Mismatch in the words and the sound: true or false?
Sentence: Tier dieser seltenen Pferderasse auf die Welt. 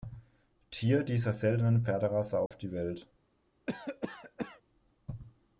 true